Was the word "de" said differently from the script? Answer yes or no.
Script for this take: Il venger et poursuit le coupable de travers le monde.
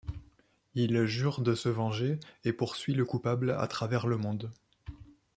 yes